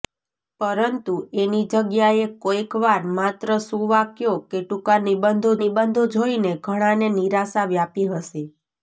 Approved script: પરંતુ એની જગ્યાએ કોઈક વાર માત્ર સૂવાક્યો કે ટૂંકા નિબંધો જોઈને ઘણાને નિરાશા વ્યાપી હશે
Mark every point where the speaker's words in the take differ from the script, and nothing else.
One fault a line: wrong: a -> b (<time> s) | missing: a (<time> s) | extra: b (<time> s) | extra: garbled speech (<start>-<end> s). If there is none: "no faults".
extra: નિબંધો (5.6 s)